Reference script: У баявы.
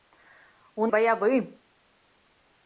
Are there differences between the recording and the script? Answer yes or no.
no